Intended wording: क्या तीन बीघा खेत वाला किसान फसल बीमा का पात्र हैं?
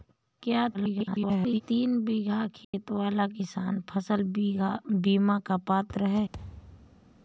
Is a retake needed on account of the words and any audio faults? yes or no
yes